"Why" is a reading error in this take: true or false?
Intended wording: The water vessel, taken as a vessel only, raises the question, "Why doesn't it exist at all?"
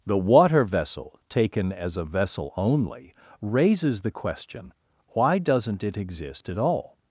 false